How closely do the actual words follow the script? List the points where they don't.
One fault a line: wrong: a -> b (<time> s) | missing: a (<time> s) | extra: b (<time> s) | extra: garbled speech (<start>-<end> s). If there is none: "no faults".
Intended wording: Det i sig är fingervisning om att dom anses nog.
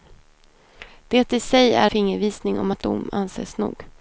no faults